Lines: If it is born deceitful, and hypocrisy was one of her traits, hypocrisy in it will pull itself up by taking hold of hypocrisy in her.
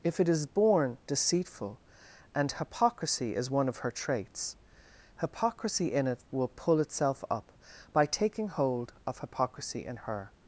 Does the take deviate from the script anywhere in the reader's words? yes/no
yes